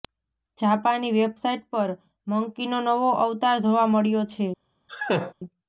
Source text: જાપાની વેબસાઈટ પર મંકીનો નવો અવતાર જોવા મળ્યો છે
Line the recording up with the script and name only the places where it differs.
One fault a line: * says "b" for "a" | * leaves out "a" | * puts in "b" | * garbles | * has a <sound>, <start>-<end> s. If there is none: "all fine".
* has a laugh, 4.9-5.3 s